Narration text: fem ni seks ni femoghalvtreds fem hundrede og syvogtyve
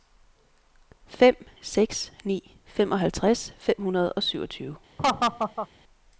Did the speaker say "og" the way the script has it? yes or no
yes